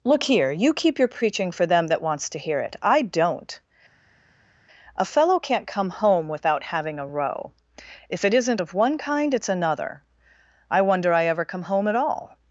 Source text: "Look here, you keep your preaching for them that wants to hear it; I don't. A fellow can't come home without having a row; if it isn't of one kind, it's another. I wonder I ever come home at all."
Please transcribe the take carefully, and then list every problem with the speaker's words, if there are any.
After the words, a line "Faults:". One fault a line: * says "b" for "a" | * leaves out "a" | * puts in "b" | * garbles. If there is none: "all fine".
"Look here, you keep your preaching for them that wants to hear it; I don't. A fellow can't come home without having a row; if it isn't of one kind, it's another. I wonder I ever come home at all."
Faults:
all fine